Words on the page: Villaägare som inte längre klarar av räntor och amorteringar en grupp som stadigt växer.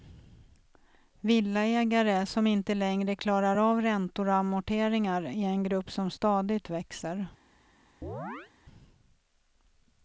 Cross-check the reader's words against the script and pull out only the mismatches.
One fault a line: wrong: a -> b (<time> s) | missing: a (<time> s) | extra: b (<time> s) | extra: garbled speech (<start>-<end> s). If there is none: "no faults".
extra: är (5.2 s)